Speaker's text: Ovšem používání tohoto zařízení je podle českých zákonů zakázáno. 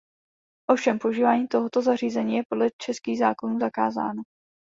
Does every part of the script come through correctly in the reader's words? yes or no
yes